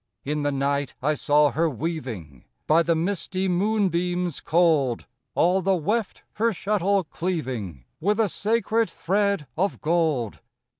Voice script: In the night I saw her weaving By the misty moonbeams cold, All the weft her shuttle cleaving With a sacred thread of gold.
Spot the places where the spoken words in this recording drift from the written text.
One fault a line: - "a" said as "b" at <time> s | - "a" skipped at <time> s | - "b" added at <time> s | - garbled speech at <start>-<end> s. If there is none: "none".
none